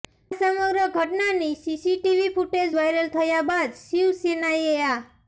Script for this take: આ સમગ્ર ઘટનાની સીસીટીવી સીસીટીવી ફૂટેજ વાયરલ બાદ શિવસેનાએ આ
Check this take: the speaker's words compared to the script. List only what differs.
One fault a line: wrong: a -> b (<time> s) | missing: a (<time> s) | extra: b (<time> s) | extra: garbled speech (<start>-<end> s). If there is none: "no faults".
missing: સીસીટીવી (2.3 s)
extra: થયા (3.1 s)